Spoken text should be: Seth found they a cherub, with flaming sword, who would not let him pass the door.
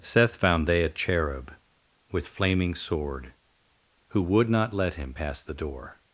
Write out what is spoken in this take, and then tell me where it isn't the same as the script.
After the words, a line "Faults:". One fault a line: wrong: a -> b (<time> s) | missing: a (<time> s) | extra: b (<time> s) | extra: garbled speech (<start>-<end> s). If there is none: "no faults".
Seth found they a cherub, with flaming sword, who would not let him pass the door.
Faults:
no faults